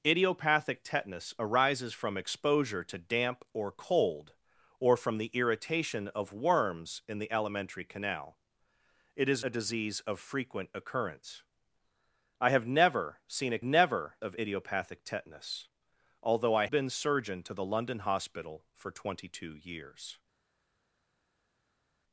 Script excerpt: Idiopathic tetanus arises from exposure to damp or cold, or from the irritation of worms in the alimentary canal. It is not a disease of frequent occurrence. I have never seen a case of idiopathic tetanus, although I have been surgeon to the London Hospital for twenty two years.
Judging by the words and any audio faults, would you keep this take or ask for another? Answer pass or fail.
fail